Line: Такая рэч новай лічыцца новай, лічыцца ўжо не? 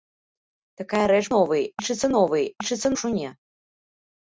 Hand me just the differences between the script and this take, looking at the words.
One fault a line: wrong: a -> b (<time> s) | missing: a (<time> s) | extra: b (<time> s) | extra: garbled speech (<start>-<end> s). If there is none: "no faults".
no faults